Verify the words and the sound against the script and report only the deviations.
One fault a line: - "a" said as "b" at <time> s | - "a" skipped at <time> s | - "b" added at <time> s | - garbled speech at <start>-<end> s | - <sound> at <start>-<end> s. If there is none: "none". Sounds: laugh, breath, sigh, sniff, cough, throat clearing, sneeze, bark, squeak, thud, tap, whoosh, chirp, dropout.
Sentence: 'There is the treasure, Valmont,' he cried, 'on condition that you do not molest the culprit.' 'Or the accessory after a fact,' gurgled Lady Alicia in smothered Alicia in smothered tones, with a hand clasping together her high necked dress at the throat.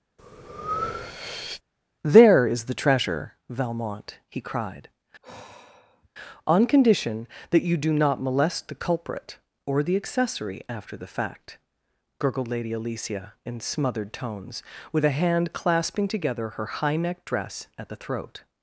- breath at 0.2-1.6 s
- sigh at 5.2-6.1 s
- "a" said as "the" at 11.0 s
- "Alicia in smothered" skipped at 14.1 s